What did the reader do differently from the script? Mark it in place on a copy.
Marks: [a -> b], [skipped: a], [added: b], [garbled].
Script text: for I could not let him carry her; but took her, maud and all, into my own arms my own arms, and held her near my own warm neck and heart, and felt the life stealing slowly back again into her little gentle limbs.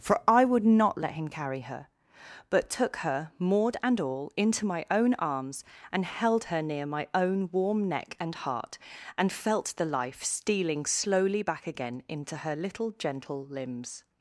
for I [could -> would] not let him carry her; but took her, maud and all, into my own arms [skipped: my own arms,] and held her near my own warm neck and heart, and felt the life stealing slowly back again into her little gentle limbs.